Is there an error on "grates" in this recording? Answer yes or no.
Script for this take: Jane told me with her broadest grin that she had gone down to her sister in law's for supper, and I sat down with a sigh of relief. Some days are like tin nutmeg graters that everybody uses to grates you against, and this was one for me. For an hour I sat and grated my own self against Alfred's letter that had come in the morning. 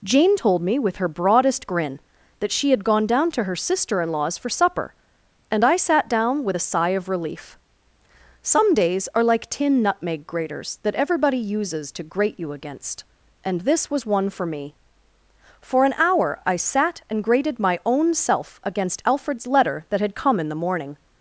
yes